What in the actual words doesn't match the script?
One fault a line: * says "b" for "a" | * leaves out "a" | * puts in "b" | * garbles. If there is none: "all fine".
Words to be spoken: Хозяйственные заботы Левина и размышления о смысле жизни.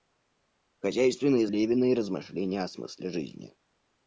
* leaves out "заботы"